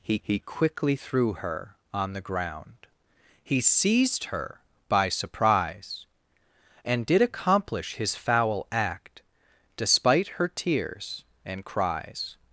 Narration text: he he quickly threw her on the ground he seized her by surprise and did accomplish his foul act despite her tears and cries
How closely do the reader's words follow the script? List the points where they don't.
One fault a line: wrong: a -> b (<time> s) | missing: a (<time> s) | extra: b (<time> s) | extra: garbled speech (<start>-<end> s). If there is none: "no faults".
no faults